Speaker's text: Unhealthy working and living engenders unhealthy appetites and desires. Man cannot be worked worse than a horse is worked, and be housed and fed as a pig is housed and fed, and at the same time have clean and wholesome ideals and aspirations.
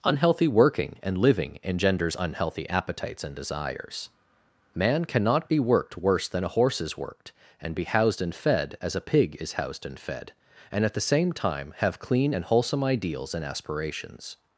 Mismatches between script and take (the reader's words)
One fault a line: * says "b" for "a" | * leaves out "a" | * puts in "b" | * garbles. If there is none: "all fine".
all fine